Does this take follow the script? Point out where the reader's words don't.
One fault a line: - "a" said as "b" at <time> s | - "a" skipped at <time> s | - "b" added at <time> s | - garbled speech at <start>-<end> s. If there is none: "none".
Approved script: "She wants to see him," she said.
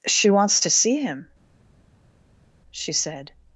none